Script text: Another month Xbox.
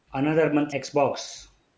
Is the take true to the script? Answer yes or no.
yes